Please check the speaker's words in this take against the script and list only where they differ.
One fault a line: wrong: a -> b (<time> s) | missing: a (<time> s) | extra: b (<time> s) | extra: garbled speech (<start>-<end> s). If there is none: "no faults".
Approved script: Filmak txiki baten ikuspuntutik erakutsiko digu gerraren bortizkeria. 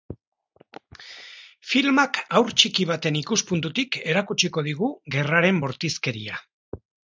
extra: haur (2.4 s)